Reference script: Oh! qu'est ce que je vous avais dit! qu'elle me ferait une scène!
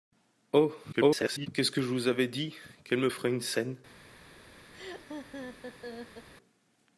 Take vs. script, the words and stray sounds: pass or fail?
fail